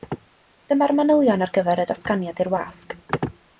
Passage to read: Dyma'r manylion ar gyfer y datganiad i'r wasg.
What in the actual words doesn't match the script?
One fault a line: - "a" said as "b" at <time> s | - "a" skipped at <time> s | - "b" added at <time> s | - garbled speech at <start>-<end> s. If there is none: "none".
none